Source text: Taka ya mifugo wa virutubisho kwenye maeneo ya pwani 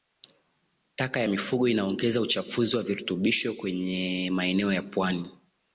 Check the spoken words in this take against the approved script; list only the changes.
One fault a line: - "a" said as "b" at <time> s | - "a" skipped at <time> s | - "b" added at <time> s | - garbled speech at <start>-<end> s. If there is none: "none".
- "inaongeza uchafuzi" added at 1.7 s